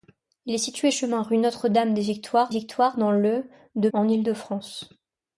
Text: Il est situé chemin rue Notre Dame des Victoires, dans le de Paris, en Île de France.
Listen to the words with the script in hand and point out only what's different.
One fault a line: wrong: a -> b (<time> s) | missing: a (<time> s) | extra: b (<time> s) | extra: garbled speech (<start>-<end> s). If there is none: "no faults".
extra: Victoires (2.5 s)
missing: Paris (3.9 s)